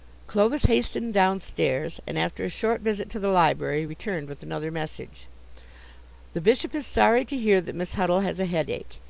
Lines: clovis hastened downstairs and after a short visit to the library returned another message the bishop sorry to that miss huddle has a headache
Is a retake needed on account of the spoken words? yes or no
yes